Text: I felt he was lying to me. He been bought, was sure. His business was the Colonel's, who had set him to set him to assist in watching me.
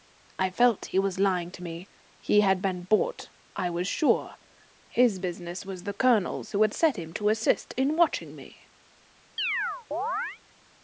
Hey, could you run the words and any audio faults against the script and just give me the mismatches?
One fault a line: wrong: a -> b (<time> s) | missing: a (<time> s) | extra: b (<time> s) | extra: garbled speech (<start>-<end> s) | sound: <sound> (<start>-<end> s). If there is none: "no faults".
extra: had (2.4 s)
extra: I (3.6 s)
missing: set him to (7.3 s)
sound: chirp (9.4-10.4 s)